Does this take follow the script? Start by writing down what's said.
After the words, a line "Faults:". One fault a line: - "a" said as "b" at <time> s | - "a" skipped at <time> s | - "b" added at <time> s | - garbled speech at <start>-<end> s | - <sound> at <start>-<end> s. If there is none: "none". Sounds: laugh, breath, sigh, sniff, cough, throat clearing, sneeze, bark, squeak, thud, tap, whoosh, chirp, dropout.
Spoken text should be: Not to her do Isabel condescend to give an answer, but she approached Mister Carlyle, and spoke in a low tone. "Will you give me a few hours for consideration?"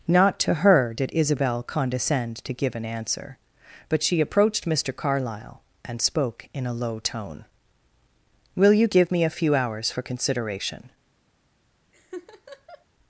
Not to her did Isabel condescend to give an answer, but she approached Mister Carlyle, and spoke in a low tone. "Will you give me a few hours for consideration?"
Faults:
- "do" said as "did" at 0.9 s
- laugh at 11.9-12.9 s